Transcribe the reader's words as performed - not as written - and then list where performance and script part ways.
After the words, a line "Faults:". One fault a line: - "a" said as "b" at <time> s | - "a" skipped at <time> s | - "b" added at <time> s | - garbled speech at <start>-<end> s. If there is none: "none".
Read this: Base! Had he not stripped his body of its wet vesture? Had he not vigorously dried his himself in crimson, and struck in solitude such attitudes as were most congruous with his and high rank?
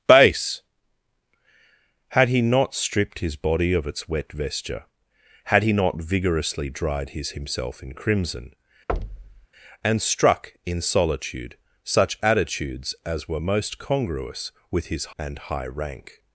Base! Had he not stripped his body of its wet vesture? Had he not vigorously dried his himself in crimson, and struck in solitude such attitudes as were most congruous with his and high rank?
Faults:
none